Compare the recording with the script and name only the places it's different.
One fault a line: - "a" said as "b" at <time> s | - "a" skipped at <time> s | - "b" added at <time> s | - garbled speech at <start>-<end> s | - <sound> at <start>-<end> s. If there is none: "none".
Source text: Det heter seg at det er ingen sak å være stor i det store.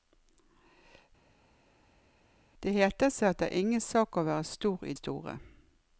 - "det" skipped at 4.9 s